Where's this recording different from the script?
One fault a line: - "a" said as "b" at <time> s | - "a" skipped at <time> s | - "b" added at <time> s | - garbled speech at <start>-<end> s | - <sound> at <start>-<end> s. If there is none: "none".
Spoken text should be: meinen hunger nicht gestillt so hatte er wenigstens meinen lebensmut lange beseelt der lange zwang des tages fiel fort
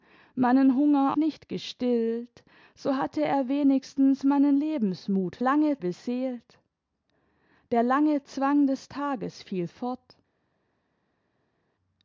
none